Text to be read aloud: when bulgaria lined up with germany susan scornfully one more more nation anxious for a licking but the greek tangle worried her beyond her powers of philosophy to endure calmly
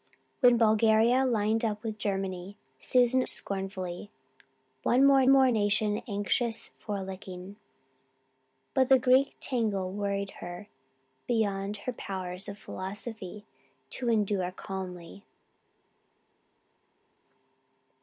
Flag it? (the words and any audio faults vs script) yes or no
no